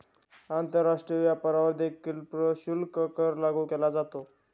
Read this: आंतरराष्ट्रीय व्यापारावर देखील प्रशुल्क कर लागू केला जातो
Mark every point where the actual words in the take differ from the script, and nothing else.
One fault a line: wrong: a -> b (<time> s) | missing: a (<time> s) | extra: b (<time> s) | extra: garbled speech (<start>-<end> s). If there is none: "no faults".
no faults